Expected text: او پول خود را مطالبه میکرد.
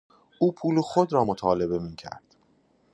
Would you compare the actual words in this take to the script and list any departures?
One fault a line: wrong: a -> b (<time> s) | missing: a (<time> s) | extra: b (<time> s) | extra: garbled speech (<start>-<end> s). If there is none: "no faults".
no faults